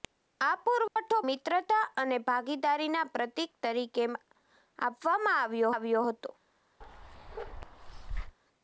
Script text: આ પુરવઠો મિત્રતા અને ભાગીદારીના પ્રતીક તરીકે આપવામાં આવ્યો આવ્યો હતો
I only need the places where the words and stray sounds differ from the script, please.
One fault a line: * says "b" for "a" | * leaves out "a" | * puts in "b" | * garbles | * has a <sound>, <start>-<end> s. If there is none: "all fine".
* has a dropout, 0.9-1.0 s
* has a bark, 6.8-8.4 s